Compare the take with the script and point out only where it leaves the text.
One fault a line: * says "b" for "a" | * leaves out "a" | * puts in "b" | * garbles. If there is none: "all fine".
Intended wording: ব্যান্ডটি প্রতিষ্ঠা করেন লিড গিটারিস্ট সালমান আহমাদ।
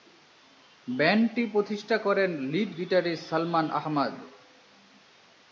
all fine